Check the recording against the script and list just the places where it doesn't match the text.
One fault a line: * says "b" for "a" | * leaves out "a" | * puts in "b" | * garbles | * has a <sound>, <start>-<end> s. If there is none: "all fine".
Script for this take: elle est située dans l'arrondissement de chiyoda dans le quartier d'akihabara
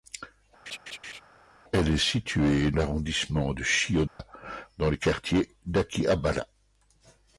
* has a laugh, 0.7-1.2 s
* leaves out "dans"
* has a dropout, 4.1-4.2 s